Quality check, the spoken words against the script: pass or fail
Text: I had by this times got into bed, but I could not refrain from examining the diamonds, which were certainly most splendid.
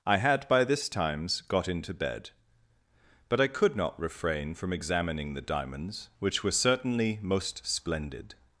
pass